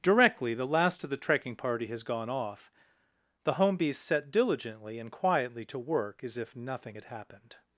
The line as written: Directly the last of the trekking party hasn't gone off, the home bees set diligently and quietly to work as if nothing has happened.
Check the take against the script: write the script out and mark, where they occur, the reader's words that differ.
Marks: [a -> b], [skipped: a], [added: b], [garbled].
Directly the last of the trekking party [hasn't -> has] gone off, the home bees set diligently and quietly to work as if nothing [has -> had] happened.